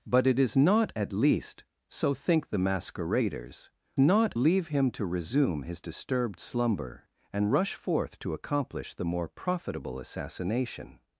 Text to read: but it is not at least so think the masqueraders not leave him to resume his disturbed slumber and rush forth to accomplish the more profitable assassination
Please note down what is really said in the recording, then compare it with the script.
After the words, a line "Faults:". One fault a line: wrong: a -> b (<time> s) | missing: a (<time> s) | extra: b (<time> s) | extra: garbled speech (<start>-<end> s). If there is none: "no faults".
but it is not at least so think the masqueraders not leave him to resume his disturbed slumber and rush forth to accomplish the more profitable assassination
Faults:
no faults